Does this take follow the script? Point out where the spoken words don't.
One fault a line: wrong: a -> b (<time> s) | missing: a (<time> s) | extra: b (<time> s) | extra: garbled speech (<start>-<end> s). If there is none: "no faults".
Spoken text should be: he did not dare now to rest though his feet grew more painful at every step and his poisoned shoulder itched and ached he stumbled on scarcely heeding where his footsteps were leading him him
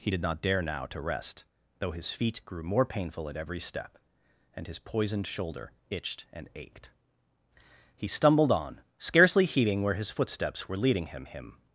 no faults